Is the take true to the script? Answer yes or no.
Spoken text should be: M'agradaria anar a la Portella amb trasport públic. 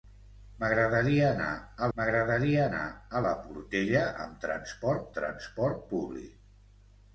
no